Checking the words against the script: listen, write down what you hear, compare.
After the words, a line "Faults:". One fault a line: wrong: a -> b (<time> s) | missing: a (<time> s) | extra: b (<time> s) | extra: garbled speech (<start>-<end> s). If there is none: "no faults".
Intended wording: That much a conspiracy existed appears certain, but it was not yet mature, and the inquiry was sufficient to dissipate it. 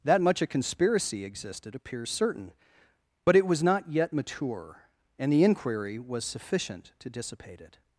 That much a conspiracy existed appears certain, but it was not yet mature, and the inquiry was sufficient to dissipate it.
Faults:
no faults